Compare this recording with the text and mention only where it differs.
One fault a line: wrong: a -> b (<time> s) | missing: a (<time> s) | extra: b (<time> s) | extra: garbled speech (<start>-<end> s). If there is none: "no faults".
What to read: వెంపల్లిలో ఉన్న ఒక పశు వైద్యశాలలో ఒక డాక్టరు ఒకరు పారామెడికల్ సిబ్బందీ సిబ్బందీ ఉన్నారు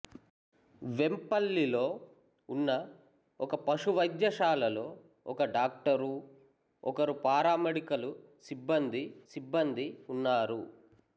no faults